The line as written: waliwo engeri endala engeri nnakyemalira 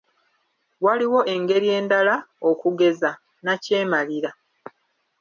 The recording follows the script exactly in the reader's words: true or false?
false